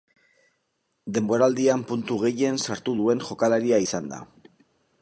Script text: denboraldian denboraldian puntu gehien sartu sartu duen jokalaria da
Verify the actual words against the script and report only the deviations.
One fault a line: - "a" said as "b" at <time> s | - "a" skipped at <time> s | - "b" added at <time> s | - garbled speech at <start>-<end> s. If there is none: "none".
- "denboraldian" skipped at 1.8 s
- "sartu" skipped at 3.0 s
- "izan" added at 3.9 s